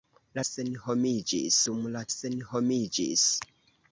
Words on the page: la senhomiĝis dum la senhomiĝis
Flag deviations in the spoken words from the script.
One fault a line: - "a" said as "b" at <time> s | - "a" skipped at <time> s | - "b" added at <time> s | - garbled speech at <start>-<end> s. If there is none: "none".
none